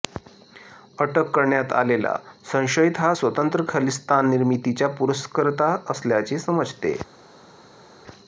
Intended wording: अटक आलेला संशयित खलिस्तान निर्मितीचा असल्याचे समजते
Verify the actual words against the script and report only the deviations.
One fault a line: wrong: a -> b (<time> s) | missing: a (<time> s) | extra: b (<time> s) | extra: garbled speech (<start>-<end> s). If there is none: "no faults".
extra: करण्यात (1.3 s)
extra: हा स्वतंत्र (3.0 s)
extra: पुरस्कर्ता (5.0 s)